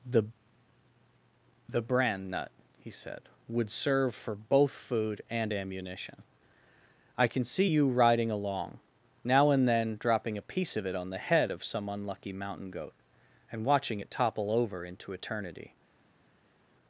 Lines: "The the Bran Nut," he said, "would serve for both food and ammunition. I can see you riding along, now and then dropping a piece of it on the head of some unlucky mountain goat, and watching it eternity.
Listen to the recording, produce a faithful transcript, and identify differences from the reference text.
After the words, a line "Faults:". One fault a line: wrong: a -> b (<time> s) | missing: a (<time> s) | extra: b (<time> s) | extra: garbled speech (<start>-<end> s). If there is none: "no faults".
"The the Bran Nut," he said, "would serve for both food and ammunition. I can see you riding along, now and then dropping a piece of it on the head of some unlucky mountain goat, and watching it topple over into eternity.
Faults:
extra: topple over into (14.1 s)